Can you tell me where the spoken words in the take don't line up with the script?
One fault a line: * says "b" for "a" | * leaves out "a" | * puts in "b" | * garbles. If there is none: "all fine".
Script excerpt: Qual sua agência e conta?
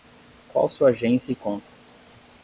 all fine